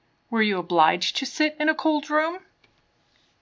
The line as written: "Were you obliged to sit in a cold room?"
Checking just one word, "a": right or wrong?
right